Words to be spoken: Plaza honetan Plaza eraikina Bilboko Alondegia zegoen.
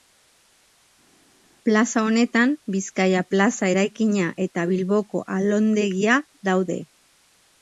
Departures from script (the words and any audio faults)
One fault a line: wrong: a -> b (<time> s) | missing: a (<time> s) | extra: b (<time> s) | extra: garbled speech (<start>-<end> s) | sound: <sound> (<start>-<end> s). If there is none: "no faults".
extra: Bizkaia (2.7 s)
extra: eta (4.5 s)
wrong: zegoen -> daude (6.5 s)